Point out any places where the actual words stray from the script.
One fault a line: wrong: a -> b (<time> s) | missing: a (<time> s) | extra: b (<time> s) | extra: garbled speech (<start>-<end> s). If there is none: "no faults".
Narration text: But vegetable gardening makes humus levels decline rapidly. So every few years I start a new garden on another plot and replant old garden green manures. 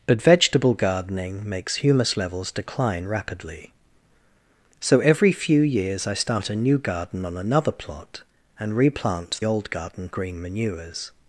no faults